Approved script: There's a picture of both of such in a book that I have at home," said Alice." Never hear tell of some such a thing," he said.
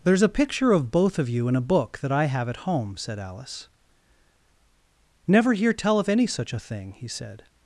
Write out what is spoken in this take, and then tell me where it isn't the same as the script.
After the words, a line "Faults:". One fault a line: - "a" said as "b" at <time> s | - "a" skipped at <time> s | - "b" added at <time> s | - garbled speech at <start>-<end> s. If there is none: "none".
There's a picture of both of you in a book that I have at home," said Alice." Never hear tell of any such a thing," he said.
Faults:
- "such" said as "you" at 1.3 s
- "some" said as "any" at 6.1 s